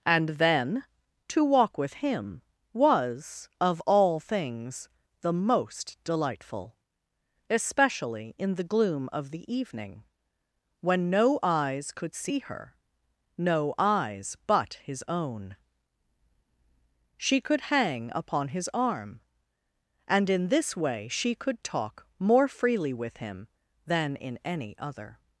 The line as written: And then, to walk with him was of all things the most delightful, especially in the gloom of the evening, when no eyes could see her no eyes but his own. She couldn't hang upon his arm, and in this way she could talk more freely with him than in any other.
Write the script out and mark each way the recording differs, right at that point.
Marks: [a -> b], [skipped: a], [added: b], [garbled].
And then, to walk with him was of all things the most delightful, especially in the gloom of the evening, when no eyes could see her no eyes but his own. She [couldn't -> could] hang upon his arm, and in this way she could talk more freely with him than in any other.